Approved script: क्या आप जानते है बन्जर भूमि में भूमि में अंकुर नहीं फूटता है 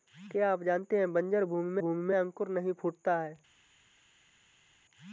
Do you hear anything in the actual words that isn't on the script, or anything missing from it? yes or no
no